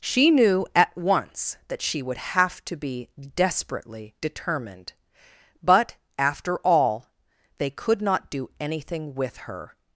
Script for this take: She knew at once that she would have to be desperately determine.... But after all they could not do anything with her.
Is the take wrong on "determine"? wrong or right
wrong